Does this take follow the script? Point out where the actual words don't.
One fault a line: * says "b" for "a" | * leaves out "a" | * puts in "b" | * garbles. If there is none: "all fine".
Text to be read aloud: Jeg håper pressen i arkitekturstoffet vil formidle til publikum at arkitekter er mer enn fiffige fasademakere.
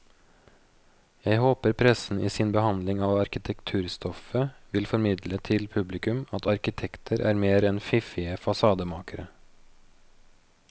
* puts in "sin behandling av"